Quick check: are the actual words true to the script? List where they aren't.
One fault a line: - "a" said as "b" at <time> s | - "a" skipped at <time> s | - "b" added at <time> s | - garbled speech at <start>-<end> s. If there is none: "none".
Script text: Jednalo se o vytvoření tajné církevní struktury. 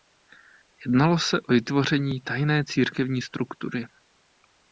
none